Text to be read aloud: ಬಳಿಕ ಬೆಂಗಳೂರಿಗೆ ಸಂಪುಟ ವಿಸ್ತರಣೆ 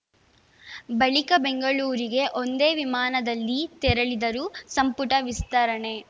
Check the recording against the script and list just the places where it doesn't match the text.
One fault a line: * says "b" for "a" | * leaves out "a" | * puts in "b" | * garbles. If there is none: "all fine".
* puts in "ಒಂದೇ ವಿಮಾನದಲ್ಲಿ ತೆರಳಿದರು"